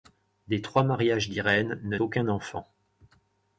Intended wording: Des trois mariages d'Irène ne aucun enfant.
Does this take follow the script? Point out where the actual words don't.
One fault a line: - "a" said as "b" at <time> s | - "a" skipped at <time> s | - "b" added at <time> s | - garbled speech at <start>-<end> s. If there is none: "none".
none